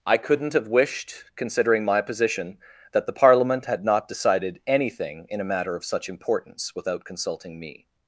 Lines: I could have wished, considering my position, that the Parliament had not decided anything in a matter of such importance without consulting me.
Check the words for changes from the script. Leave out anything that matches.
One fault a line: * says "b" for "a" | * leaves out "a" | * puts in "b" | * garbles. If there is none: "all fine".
* says "couldn't" for "could"